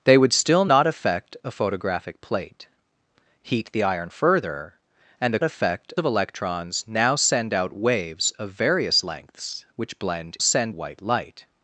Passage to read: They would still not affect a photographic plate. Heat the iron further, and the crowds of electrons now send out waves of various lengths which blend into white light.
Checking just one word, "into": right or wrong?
wrong